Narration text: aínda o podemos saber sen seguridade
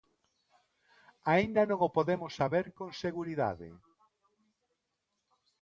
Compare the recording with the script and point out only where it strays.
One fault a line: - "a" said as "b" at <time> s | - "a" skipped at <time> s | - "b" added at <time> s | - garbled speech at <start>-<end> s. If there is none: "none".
- "non" added at 1.7 s
- "sen" said as "con" at 2.8 s